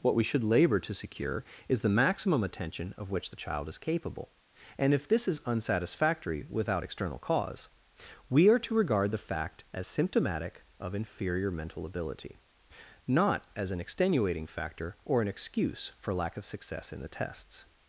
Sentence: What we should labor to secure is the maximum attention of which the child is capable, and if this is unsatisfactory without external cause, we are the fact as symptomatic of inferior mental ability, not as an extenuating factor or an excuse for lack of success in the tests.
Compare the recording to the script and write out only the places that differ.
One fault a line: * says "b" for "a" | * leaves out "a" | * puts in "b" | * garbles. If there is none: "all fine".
* puts in "to regard"